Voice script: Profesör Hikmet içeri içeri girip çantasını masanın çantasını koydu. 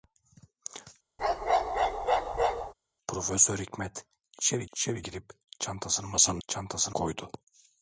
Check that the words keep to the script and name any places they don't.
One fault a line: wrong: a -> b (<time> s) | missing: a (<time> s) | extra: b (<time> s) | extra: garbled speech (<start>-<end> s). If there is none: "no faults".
no faults